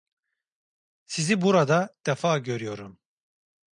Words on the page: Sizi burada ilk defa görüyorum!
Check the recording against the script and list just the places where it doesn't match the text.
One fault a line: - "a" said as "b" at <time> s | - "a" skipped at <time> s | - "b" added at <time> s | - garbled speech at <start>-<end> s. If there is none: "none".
- "ilk" skipped at 1.9 s